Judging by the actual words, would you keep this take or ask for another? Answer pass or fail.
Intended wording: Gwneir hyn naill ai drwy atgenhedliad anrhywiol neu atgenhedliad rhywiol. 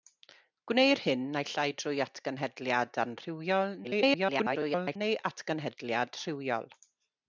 fail